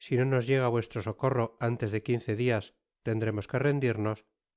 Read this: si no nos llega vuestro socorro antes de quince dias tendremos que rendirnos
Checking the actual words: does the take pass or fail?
pass